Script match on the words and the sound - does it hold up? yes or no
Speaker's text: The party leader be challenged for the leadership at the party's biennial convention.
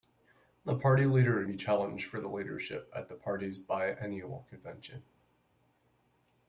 yes